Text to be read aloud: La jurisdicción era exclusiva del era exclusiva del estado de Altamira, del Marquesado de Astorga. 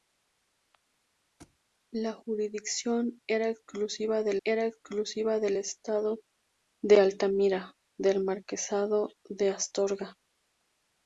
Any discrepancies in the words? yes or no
no